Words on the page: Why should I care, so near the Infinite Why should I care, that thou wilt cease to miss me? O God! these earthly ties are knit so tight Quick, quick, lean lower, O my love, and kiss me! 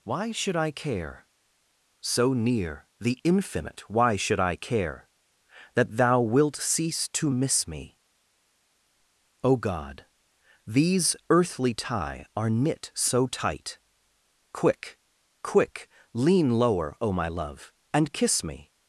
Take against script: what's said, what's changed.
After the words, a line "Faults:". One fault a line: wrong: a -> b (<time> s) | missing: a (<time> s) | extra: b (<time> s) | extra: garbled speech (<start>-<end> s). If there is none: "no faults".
Why should I care, so near the Infinite Why should I care, that thou wilt cease to miss me? O God! these earthly tie are knit so tight Quick, quick, lean lower, O my love, and kiss me!
Faults:
wrong: ties -> tie (11.7 s)